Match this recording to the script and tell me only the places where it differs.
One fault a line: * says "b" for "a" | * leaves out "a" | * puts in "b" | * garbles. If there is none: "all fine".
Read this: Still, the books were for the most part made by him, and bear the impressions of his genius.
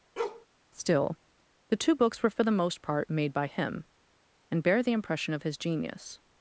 * puts in "two"
* says "impression" for "impressions"